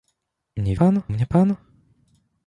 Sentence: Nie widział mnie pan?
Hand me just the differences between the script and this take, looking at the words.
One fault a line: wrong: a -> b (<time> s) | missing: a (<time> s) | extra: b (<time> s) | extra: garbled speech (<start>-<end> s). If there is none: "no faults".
wrong: widział -> pan (0.7 s)